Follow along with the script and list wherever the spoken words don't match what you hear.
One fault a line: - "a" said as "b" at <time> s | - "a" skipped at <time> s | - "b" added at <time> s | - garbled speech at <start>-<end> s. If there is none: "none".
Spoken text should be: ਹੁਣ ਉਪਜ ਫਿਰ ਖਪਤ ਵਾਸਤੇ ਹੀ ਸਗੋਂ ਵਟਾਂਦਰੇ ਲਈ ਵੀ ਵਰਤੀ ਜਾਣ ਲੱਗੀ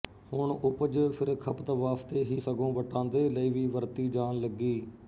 none